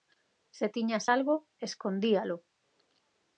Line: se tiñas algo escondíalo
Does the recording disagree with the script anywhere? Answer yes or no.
no